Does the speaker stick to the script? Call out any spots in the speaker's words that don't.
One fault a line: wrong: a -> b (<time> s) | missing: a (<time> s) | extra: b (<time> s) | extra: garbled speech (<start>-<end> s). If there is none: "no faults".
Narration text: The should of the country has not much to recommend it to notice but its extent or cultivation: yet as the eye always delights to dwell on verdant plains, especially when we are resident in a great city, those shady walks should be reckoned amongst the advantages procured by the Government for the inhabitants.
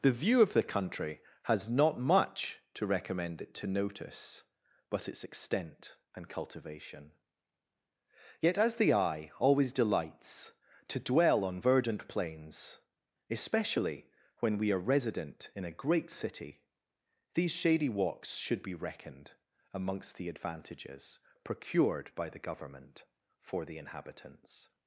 wrong: should -> view (0.1 s)
wrong: or -> and (6.2 s)
wrong: those -> these (17.3 s)